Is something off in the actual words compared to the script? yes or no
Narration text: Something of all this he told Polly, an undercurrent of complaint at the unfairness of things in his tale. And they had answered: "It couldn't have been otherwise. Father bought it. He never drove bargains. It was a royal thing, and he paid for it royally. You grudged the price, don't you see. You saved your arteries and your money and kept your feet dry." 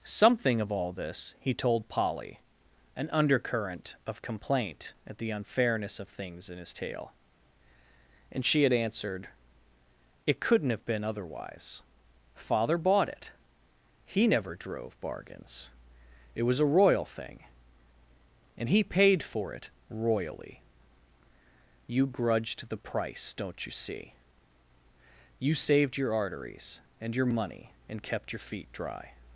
yes